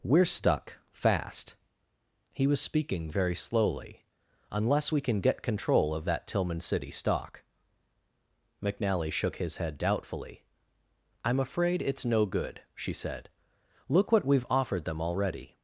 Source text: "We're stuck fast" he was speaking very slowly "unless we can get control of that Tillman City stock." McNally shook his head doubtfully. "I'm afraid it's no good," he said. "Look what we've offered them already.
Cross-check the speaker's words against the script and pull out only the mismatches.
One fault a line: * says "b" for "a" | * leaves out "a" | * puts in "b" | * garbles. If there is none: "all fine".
* says "she" for "he"